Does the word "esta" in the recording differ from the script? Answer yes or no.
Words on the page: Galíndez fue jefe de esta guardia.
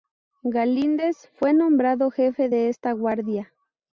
no